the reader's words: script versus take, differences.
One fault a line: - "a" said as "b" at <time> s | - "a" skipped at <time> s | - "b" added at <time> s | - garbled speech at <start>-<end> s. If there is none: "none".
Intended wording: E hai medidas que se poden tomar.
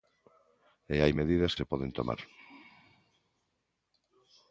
- "que" skipped at 1.5 s